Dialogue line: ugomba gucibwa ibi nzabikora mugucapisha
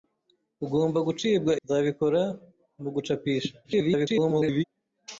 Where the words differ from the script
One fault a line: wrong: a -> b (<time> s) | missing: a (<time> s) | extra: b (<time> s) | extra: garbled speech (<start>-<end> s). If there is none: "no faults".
missing: ibi (1.5 s)
extra: garbled speech (3.6-4.6 s)